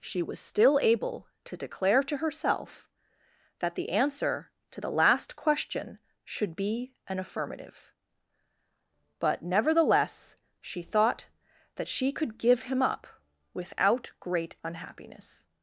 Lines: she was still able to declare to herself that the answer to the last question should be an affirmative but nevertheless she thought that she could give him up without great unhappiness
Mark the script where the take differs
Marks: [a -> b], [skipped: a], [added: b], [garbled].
she was still able to declare to herself that the answer to the last question should be an affirmative but nevertheless she thought that she could give him up without great unhappiness